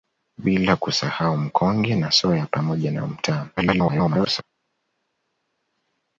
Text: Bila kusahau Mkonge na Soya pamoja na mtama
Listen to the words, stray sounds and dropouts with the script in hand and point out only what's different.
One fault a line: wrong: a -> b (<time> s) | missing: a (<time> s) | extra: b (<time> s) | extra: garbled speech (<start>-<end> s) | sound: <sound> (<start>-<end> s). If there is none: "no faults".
extra: garbled speech (3.6-4.4 s)